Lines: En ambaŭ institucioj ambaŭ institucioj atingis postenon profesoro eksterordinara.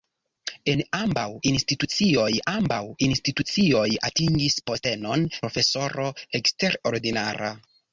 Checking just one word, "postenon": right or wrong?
right